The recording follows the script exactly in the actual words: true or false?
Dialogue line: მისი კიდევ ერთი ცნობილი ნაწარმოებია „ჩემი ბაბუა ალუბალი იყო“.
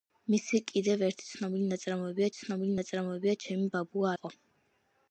false